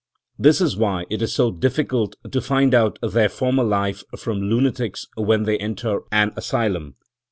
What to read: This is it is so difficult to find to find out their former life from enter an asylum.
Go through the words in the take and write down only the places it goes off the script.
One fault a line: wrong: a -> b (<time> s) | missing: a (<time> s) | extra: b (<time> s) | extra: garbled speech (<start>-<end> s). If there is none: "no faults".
extra: why (0.8 s)
missing: to find (2.7 s)
extra: lunatics when they (4.4 s)